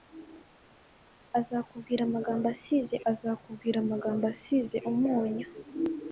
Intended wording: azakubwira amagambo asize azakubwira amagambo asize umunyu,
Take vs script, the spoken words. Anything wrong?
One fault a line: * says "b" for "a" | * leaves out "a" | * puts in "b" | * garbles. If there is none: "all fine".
all fine